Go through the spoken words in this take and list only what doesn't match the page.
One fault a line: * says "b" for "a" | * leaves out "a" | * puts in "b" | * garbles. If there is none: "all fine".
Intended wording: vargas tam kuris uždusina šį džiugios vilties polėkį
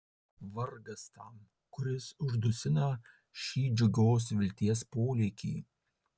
all fine